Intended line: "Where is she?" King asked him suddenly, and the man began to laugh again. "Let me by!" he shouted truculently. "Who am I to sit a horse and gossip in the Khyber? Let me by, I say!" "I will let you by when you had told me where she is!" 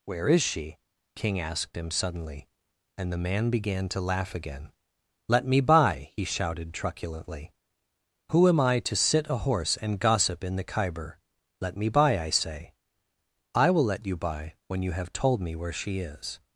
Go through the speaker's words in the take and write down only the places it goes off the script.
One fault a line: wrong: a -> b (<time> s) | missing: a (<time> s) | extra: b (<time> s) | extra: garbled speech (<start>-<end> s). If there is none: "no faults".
wrong: had -> have (14.9 s)